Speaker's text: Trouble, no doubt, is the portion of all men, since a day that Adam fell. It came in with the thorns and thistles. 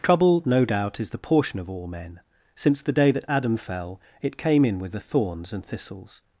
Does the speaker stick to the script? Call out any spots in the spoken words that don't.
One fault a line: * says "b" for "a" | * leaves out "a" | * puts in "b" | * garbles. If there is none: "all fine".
* says "the" for "a"